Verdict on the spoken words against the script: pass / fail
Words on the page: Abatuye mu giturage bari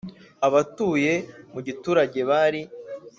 pass